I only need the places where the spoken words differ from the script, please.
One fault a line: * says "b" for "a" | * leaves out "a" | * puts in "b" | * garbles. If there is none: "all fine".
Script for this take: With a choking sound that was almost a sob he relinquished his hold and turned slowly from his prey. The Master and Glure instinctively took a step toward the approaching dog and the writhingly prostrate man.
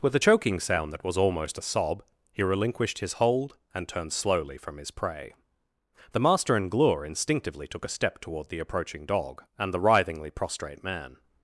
all fine